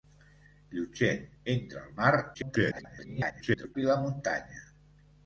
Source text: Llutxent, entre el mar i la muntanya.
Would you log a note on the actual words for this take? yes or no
yes